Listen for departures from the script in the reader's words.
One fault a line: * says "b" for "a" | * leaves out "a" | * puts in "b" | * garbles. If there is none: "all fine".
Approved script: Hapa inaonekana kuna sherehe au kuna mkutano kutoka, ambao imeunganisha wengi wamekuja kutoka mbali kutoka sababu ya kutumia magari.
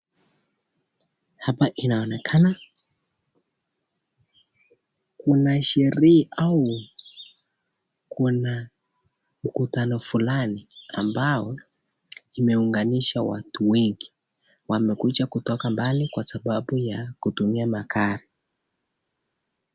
* says "fulani" for "kutoka"
* puts in "watu"
* says "kwa" for "kutoka"